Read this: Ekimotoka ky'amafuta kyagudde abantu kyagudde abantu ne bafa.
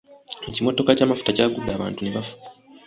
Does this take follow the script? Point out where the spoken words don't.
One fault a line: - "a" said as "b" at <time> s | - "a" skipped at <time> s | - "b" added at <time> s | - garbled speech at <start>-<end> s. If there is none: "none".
- "kyagudde abantu" skipped at 2.0 s